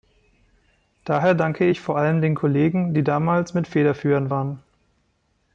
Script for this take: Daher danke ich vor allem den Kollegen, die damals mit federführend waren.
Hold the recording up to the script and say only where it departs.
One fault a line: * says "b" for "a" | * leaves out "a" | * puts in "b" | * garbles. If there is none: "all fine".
all fine